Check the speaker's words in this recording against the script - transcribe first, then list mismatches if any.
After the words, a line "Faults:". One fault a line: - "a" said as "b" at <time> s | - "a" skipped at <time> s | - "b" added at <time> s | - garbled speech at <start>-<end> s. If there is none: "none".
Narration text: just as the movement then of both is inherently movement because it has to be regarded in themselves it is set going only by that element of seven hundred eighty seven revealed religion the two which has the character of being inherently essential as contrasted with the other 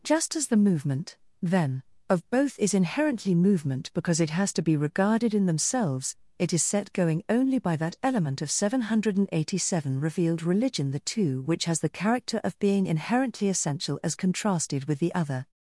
just as the movement then of both is inherently movement because it has to be regarded in themselves it is set going only by that element of seven hundred eighty seven revealed religion the two which has the character of being inherently essential as contrasted with the other
Faults:
none